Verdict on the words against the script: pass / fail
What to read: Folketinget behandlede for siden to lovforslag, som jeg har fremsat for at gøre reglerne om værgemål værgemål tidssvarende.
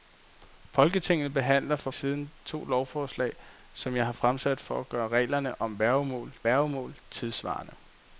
pass